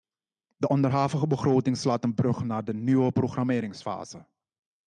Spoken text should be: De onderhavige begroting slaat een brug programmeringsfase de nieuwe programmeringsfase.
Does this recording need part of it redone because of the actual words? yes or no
yes